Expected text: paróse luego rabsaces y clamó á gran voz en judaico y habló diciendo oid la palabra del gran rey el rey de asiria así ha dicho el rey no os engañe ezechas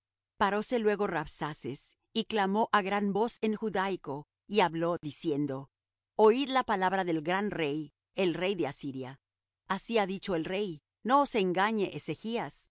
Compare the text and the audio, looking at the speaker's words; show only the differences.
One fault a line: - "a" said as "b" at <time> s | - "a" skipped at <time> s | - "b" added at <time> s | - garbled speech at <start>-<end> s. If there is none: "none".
none